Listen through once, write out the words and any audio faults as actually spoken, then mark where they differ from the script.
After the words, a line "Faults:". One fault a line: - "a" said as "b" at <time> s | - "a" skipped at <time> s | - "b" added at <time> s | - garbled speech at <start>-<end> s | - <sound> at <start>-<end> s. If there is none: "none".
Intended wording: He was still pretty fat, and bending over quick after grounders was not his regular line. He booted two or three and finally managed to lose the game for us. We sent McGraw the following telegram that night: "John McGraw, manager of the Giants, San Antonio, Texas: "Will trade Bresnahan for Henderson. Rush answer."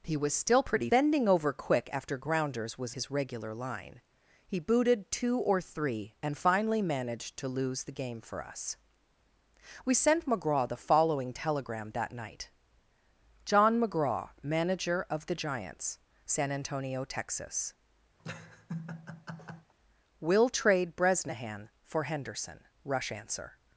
He was still pretty bending over quick after grounders was his regular line. He booted two or three and finally managed to lose the game for us. We sent McGraw the following telegram that night: "John McGraw, manager of the Giants, San Antonio, Texas: "Will trade Bresnahan for Henderson. Rush answer."
Faults:
- "fat and" skipped at 0.9 s
- "not" skipped at 3.0 s
- laugh at 18.2-19.7 s